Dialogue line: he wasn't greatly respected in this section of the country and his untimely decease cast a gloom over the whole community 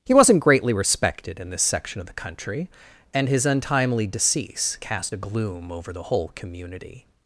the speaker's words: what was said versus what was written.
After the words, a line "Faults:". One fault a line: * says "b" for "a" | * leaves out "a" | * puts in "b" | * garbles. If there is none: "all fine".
he wasn't greatly respected in this section of the country and his untimely decease cast a gloom over the whole community
Faults:
all fine